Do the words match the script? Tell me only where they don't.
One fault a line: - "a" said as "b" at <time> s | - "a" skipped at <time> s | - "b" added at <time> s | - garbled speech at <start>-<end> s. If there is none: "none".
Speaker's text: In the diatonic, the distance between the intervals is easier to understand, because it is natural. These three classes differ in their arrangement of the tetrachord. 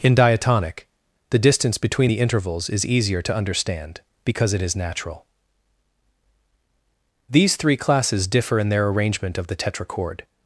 - "the" skipped at 0.1 s